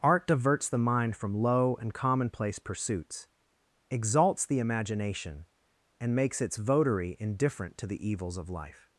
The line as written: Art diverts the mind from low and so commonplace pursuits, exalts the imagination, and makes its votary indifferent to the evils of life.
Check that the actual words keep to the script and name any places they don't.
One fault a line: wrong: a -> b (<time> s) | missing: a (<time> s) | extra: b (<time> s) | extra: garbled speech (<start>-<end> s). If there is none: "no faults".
missing: so (1.9 s)